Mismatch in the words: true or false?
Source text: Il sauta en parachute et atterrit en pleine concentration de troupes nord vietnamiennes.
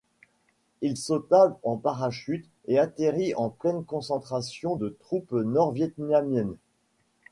false